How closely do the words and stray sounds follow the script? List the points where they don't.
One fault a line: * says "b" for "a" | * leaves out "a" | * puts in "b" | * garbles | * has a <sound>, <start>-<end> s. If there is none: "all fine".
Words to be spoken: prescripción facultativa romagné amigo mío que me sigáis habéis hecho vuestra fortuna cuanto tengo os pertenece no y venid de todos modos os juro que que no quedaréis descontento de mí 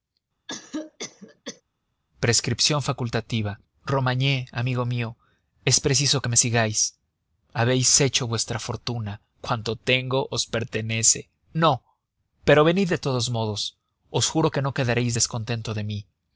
* has a cough, 0.5-1.6 s
* puts in "es preciso"
* says "pero" for "y"
* leaves out "que"